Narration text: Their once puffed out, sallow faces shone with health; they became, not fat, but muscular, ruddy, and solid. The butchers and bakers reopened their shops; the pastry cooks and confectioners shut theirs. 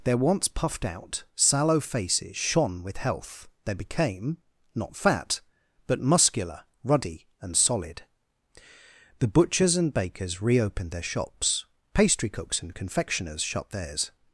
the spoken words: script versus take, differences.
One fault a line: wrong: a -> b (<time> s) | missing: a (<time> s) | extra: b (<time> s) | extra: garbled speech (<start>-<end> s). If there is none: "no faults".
missing: the (11.7 s)